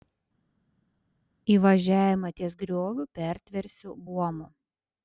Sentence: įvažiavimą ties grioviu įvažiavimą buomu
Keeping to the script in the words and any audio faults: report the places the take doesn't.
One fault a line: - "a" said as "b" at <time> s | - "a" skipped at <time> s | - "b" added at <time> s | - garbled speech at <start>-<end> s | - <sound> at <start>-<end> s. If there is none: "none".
- "įvažiavimą" said as "pertversiu" at 3.2 s